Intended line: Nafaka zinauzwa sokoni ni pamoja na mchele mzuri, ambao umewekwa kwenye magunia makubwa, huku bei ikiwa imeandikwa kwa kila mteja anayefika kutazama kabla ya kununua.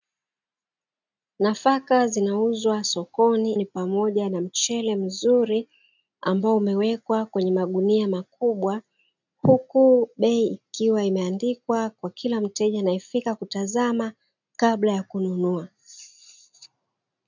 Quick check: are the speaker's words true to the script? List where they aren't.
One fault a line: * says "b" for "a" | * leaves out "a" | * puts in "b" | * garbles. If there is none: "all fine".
all fine